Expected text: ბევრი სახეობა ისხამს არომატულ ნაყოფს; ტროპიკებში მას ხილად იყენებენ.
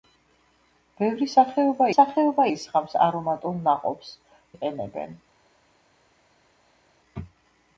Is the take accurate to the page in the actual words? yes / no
no